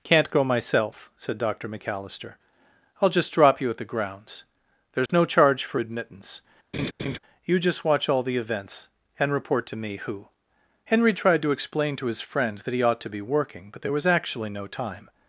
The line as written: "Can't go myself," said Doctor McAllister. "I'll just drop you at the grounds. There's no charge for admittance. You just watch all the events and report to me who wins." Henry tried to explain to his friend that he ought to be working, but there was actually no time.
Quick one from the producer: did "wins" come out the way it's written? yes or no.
no